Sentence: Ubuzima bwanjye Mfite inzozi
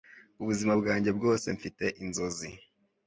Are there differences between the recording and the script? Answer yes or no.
yes